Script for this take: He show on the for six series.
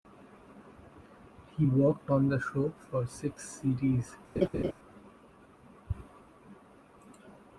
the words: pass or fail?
fail